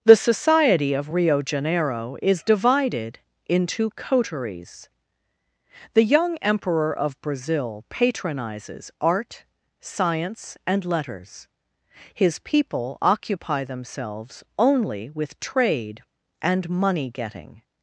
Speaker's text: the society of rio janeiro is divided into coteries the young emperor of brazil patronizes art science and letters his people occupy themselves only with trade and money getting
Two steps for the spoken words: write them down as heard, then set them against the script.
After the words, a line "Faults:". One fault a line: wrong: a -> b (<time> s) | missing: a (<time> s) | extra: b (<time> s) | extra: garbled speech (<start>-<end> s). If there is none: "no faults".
the society of rio janeiro is divided into coteries the young emperor of brazil patronizes art science and letters his people occupy themselves only with trade and money getting
Faults:
no faults